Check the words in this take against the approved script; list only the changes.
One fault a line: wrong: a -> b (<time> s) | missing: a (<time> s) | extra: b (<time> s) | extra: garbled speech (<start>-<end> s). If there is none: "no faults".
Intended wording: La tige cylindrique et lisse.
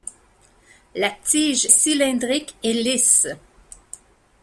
no faults